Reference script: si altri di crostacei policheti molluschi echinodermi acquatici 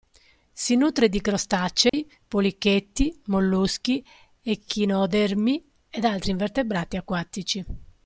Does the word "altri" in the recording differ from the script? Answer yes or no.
yes